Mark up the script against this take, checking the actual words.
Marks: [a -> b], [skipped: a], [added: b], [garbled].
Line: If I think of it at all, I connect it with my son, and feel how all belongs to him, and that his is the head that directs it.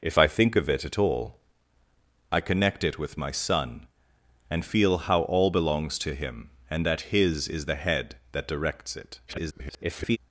If I think of it at all, I connect it with my son, and feel how all belongs to him, and that his is the head that directs it. [garbled]